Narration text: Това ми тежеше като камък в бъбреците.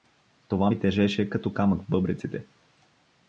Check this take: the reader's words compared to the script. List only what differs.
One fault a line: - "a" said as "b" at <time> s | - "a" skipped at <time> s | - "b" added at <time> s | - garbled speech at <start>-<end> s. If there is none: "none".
none